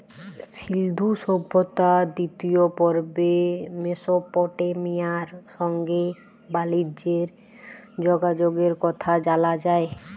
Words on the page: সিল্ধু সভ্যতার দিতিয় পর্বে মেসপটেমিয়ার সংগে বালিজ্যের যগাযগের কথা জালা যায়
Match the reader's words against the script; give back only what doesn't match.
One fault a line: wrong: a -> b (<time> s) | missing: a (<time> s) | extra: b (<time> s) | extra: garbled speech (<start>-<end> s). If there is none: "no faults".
no faults